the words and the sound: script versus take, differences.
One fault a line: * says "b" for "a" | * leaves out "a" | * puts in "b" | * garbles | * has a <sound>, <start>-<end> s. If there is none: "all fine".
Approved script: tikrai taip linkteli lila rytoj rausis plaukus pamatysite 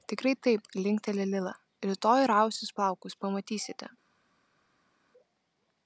all fine